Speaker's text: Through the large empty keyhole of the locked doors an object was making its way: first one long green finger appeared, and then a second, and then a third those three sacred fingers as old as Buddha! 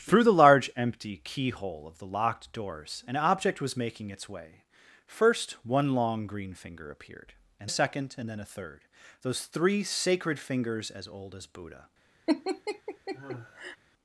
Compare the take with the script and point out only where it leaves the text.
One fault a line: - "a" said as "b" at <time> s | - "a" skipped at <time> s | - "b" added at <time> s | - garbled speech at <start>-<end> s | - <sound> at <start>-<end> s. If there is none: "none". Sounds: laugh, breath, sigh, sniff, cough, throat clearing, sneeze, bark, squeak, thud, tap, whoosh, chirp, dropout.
- "then" skipped at 7.7 s
- laugh at 12.3-13.8 s